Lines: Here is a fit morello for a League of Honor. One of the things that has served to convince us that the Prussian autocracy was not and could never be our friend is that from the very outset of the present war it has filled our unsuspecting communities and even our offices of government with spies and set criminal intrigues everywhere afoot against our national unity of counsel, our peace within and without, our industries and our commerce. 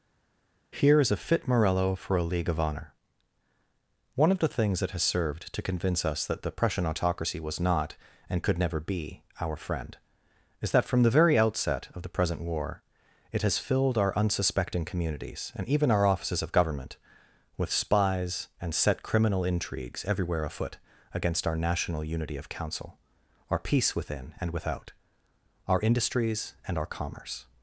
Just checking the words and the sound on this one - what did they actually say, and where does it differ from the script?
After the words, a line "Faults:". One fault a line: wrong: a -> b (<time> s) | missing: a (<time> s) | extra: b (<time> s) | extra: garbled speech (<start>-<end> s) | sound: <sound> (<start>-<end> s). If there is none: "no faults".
Here is a fit morello for a League of Honor. One of the things that has served to convince us that the Prussian autocracy was not and could never be our friend is that from the very outset of the present war it has filled our unsuspecting communities and even our offices of government with spies and set criminal intrigues everywhere afoot against our national unity of counsel, our peace within and without, our industries and our commerce.
Faults:
no faults